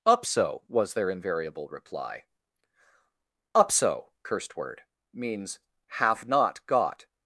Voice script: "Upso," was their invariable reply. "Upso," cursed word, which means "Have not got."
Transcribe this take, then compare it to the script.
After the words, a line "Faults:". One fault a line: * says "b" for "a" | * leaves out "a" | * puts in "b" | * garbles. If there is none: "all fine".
"Upso," was their invariable reply. "Upso," cursed word, means "Have not got."
Faults:
* leaves out "which"